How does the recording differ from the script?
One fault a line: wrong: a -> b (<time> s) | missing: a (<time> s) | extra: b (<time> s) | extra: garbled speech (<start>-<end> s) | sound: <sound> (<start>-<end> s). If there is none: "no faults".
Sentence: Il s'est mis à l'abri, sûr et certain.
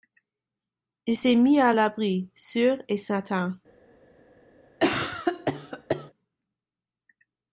sound: cough (4.8-6.1 s)